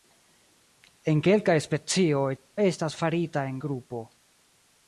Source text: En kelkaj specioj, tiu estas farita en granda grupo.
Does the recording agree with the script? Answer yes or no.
no